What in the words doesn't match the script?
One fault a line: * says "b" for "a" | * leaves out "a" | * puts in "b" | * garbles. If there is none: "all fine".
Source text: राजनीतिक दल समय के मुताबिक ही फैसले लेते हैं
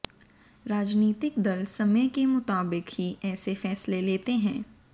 * puts in "ऐसे"